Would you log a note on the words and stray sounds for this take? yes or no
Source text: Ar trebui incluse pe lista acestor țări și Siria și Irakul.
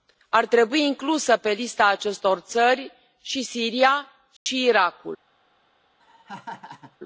yes